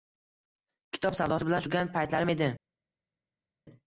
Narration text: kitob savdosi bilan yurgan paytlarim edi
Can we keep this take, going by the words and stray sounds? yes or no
yes